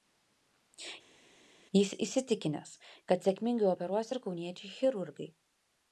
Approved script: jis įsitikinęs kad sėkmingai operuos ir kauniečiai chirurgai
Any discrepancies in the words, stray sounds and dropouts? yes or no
no